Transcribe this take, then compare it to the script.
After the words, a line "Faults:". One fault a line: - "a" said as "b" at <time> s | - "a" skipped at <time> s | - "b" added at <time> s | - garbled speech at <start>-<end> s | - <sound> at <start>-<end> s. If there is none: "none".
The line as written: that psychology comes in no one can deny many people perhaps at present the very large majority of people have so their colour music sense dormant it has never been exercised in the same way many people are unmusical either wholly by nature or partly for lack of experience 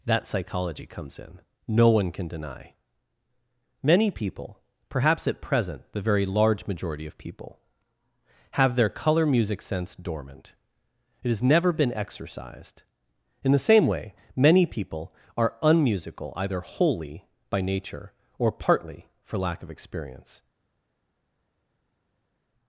that psychology comes in no one can deny many people perhaps at present the very large majority of people have their colour music sense dormant it has never been exercised in the same way many people are unmusical either wholly by nature or partly for lack of experience
Faults:
- "so" skipped at 8.7 s